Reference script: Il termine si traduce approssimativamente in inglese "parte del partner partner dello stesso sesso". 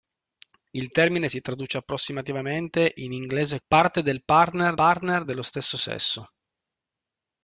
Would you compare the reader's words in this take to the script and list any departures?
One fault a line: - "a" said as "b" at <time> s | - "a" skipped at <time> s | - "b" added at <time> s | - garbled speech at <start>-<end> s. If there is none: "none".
none